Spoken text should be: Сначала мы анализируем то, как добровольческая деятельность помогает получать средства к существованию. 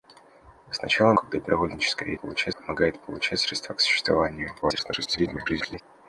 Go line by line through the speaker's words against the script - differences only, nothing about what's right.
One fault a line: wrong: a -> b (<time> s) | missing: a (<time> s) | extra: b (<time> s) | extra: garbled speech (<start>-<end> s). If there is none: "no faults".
missing: мы анализируем то (1.1 s)
wrong: деятельность -> получать (2.2 s)
extra: garbled speech (4.6-5.8 s)